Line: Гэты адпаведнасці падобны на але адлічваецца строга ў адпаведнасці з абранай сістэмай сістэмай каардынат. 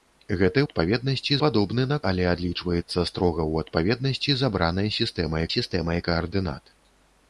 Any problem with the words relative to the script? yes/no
no